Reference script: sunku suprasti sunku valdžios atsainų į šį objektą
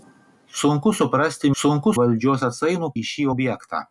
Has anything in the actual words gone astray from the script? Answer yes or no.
no